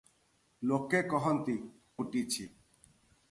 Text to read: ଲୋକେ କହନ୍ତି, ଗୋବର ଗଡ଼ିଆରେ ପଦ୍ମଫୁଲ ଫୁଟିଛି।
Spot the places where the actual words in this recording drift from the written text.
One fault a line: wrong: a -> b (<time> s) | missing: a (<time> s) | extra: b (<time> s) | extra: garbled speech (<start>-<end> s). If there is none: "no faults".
missing: ଗୋବର ଗଡ଼ିଆରେ ପଦ୍ମଫୁଲ (1.6 s)